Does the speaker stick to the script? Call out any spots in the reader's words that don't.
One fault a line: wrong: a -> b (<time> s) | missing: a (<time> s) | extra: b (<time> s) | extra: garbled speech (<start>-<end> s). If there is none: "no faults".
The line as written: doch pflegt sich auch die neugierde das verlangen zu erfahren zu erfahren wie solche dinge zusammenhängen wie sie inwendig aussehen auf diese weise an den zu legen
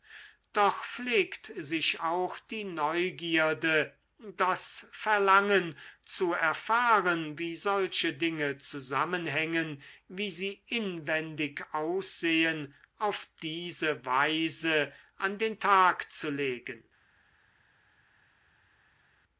missing: zu erfahren (7.4 s)
extra: tag (15.6 s)